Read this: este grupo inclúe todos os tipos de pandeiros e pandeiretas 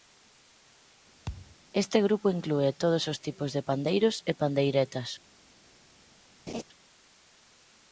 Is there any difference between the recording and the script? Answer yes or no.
no